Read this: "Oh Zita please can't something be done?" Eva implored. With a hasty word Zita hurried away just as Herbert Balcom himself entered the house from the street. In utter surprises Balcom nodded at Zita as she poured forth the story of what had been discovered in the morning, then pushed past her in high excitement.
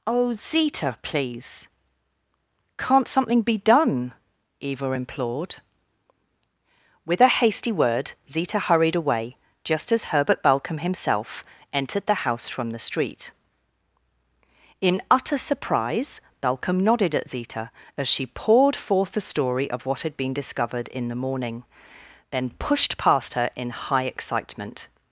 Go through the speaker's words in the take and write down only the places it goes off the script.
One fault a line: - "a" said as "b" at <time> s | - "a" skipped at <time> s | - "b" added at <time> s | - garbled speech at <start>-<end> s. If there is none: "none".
- "surprises" said as "surprise" at 15.4 s